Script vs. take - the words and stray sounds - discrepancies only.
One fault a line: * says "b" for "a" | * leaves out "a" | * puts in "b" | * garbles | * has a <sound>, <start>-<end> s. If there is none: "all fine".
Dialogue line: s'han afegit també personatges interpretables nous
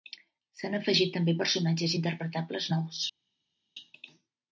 all fine